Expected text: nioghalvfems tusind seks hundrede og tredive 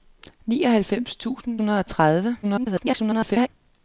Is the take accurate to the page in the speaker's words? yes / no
no